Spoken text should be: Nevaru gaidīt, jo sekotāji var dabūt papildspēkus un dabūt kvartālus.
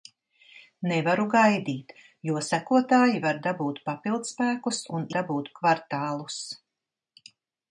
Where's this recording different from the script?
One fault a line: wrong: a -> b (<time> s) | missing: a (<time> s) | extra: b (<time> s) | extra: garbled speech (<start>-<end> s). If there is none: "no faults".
no faults